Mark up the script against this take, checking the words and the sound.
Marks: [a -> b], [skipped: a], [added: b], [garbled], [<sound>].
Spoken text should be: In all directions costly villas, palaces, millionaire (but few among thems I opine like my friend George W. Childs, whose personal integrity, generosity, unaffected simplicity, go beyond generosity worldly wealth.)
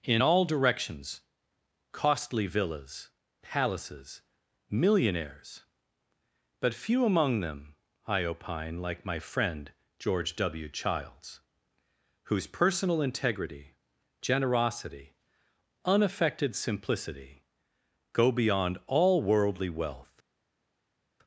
In all directions costly villas, palaces, [millionaire -> millionaires] (but few among [thems -> them] I opine like my friend George W. Childs, whose personal integrity, generosity, unaffected simplicity, go beyond [generosity -> all] worldly wealth.)